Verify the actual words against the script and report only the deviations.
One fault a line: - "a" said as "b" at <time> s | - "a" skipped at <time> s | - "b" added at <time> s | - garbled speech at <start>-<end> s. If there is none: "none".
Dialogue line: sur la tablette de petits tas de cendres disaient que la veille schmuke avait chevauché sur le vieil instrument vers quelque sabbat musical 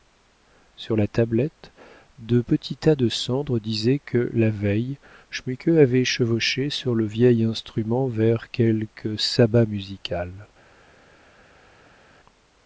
none